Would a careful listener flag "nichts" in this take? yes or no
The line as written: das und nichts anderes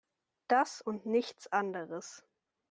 no